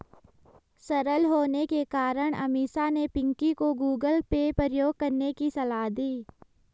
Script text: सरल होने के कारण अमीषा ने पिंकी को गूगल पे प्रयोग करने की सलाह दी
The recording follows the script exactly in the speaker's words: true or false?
true